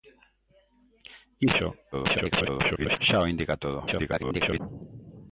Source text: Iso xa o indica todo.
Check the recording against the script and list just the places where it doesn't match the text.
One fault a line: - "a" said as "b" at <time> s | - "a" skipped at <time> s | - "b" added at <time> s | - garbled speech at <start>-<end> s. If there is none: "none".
- garbled speech at 1.9-3.0 s
- garbled speech at 3.9-4.6 s